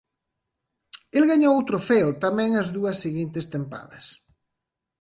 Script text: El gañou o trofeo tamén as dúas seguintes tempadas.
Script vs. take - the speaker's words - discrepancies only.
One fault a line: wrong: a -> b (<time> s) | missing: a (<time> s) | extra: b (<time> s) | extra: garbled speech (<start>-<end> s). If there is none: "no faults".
no faults